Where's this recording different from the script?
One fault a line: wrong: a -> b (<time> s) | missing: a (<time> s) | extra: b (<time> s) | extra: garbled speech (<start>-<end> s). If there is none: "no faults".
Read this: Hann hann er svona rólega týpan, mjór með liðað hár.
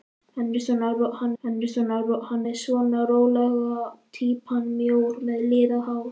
no faults